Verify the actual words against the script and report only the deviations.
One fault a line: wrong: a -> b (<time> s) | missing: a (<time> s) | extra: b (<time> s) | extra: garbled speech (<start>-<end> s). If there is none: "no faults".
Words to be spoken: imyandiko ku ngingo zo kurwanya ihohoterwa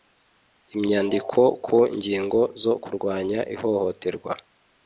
no faults